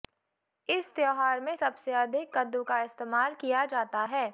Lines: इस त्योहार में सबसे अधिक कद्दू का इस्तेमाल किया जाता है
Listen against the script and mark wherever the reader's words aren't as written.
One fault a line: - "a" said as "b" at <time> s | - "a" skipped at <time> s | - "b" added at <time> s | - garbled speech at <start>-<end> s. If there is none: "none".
none